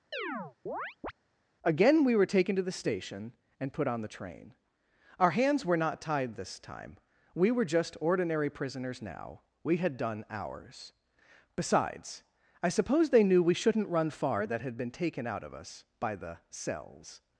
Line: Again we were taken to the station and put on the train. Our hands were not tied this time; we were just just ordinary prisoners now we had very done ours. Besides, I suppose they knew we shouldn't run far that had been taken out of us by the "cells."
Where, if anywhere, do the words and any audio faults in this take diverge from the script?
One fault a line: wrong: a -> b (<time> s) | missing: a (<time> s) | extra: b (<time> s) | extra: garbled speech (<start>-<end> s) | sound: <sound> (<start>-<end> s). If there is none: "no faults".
sound: chirp (0.1-1.1 s)
missing: just (8.0 s)
missing: very (10.0 s)